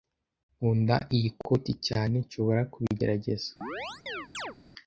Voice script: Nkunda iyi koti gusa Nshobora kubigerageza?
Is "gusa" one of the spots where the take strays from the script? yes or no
yes